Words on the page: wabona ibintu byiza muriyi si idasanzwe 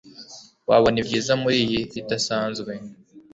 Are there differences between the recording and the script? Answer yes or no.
yes